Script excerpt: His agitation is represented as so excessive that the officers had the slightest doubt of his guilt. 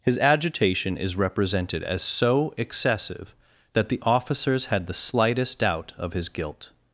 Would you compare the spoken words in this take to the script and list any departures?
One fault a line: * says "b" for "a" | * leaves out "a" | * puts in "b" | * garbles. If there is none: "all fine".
all fine